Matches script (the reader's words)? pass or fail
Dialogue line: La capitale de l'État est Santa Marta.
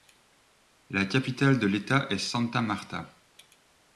pass